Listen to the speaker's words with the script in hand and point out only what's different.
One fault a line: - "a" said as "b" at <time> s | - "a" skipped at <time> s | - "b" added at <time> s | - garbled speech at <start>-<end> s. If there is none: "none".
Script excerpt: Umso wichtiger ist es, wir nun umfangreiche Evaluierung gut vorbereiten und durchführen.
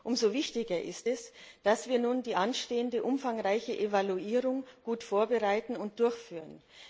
- "dass" added at 1.6 s
- "die anstehende" added at 2.2 s